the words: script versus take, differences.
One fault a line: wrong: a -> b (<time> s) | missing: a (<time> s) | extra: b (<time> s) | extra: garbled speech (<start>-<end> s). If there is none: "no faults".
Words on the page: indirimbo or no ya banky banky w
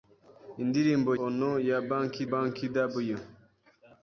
no faults